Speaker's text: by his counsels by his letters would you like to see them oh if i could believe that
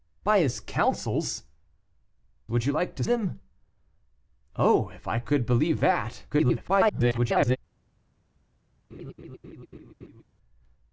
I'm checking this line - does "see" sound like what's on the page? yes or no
no